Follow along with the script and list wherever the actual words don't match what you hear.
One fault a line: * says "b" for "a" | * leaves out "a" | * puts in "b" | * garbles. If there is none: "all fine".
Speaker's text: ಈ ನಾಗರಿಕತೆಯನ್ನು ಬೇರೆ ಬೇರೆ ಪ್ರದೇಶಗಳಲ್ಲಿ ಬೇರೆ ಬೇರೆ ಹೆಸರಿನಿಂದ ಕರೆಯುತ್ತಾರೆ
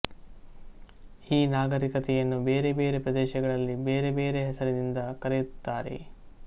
all fine